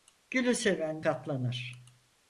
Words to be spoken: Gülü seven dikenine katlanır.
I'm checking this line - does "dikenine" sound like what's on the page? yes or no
no